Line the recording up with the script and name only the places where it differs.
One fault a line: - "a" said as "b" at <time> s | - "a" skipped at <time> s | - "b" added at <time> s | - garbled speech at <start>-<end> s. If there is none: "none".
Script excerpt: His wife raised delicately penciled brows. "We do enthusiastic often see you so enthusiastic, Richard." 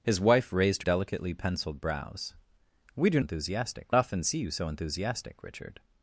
none